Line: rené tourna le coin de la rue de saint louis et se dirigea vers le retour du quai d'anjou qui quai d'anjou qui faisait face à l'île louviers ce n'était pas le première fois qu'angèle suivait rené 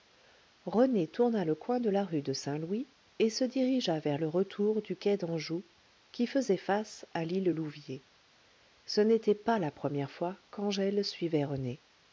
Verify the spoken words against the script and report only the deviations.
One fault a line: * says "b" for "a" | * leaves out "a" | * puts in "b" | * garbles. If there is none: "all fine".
* leaves out "quai d'anjou qui"
* says "la" for "le"